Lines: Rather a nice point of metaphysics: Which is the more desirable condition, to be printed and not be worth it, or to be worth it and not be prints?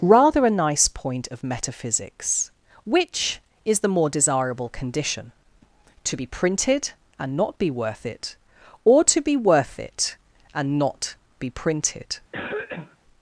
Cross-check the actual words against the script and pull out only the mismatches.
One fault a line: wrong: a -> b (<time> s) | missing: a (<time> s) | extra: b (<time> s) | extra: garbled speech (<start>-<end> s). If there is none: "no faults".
wrong: prints -> printed (11.5 s)